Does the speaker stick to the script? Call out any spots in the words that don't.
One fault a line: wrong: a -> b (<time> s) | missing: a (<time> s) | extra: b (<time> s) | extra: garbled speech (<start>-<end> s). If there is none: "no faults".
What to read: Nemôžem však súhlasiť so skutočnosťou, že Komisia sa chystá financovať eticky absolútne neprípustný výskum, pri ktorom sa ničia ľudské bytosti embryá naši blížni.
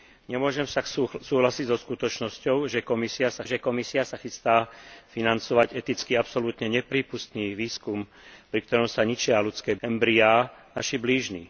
extra: že Komisia sa (3.4 s)
missing: bytosti (9.8 s)